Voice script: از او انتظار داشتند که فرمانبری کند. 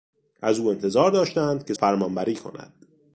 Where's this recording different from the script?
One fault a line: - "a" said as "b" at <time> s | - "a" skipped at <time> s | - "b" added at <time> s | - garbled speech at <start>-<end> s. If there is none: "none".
none